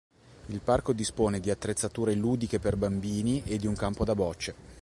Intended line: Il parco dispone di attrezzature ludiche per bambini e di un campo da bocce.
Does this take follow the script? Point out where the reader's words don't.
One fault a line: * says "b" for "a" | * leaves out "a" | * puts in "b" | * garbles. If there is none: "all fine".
all fine